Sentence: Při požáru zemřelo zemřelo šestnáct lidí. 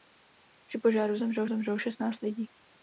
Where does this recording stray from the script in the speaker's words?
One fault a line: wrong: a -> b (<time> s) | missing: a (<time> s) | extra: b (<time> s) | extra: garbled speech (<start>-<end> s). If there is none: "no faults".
no faults